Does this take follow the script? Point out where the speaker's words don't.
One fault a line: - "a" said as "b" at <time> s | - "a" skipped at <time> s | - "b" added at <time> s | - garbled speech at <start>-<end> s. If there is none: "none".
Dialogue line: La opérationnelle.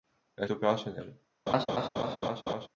none